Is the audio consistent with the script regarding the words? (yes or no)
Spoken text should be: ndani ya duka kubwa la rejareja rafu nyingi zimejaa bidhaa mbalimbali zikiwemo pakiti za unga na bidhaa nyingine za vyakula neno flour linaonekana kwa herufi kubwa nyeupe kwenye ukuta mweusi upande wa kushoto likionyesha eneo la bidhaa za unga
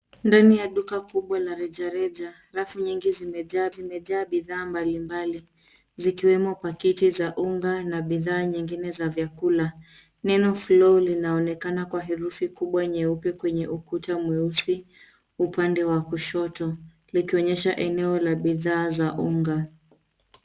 no